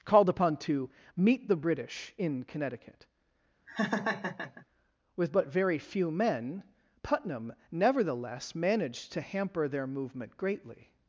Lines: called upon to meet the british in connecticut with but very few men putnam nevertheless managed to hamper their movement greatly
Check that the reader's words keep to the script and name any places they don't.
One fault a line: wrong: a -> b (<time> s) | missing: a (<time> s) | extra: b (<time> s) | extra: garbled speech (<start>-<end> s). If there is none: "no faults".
no faults